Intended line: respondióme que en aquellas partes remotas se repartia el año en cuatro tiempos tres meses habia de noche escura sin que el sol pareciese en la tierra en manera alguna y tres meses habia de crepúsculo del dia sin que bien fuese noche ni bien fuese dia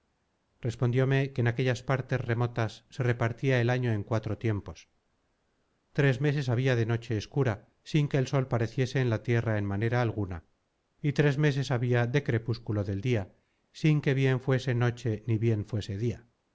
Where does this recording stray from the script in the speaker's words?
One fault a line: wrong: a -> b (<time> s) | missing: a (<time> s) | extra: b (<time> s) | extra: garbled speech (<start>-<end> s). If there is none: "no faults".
no faults